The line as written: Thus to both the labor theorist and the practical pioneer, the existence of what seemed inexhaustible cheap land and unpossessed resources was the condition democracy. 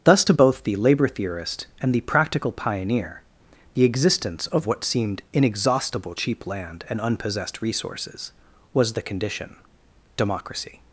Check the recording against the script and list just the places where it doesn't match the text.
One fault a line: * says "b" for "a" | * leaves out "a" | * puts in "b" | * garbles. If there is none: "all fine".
all fine